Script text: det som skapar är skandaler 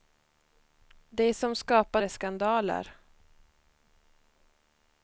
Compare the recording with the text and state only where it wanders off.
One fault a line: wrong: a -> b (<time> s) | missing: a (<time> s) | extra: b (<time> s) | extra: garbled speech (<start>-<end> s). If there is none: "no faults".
no faults